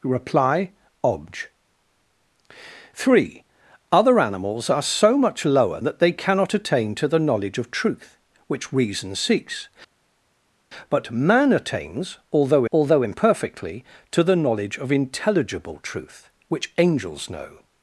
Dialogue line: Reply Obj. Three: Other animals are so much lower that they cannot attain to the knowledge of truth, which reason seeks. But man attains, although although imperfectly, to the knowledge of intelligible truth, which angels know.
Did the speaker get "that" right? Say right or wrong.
right